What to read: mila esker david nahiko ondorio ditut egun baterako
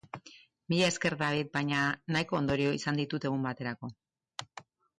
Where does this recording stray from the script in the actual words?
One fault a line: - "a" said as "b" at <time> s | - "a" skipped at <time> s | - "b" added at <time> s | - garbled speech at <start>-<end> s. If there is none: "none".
- "baina" added at 1.6 s
- "izan" added at 2.8 s